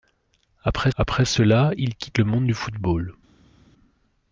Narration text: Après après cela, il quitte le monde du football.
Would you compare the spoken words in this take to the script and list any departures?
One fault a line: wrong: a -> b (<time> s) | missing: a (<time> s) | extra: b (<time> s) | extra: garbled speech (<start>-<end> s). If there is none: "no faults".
no faults